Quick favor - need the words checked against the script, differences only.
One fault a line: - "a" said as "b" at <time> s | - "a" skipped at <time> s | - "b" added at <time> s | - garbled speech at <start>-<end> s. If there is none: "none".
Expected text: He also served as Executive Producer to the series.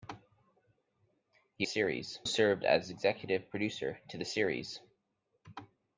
- "also" said as "series" at 1.6 s